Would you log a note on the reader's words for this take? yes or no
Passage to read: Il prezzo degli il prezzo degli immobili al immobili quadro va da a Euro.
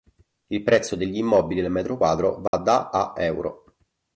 yes